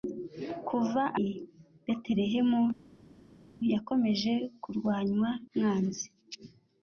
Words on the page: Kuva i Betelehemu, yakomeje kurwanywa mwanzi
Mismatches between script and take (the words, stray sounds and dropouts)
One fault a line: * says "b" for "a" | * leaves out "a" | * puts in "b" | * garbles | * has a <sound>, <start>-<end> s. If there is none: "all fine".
all fine